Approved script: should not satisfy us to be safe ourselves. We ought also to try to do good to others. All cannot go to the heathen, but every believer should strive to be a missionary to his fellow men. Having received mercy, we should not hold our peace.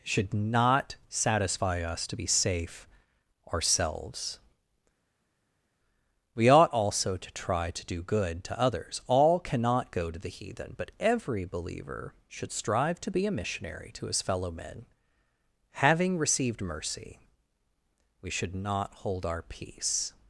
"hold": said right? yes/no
yes